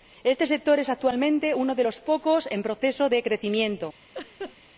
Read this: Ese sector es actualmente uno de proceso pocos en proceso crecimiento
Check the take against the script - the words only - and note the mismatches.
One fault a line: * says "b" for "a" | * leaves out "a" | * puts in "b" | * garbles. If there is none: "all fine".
* says "Este" for "Ese"
* says "los" for "proceso"
* puts in "de"